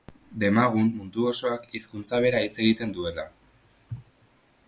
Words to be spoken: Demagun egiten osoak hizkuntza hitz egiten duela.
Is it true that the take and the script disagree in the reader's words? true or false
true